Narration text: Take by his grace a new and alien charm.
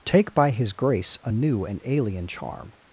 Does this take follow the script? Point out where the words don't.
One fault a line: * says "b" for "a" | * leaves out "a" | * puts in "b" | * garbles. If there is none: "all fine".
all fine